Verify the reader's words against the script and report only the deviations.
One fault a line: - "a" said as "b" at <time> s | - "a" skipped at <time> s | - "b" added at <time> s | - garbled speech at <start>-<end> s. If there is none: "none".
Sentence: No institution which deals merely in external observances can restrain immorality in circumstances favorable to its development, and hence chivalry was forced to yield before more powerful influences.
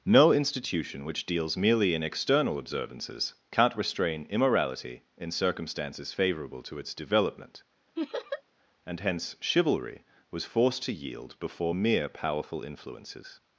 - "can" said as "can't" at 3.5 s
- "more" said as "mere" at 11.7 s